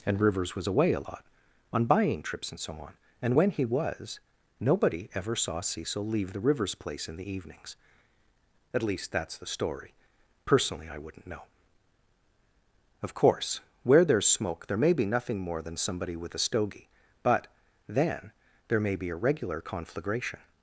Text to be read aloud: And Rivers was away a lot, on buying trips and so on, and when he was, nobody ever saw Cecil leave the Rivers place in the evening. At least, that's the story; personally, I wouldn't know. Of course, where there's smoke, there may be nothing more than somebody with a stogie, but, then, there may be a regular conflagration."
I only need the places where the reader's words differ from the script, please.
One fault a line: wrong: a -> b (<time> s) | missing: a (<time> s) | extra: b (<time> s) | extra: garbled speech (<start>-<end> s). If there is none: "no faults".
wrong: evening -> evenings (7.3 s)